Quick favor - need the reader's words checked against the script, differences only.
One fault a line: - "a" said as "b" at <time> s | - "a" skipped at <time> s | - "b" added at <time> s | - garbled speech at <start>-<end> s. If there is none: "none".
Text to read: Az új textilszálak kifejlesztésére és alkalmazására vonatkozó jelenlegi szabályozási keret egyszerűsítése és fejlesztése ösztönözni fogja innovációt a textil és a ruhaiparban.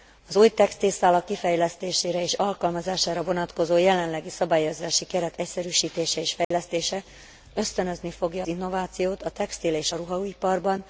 none